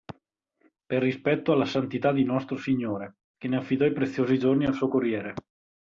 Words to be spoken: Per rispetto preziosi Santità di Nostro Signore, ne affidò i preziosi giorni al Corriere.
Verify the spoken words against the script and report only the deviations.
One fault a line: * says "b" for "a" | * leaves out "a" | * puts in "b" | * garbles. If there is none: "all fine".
* says "alla" for "preziosi"
* puts in "che"
* puts in "suo"